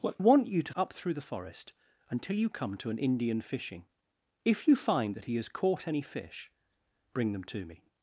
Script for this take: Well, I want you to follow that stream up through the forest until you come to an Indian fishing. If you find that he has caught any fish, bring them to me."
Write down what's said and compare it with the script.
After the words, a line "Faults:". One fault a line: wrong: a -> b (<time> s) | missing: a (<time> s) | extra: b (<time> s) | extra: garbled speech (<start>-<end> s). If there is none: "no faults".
Well, want you to up through the forest until you come to an Indian fishing. If you find that he has caught any fish, bring them to me."
Faults:
missing: I (0.1 s)
missing: follow that stream (0.7 s)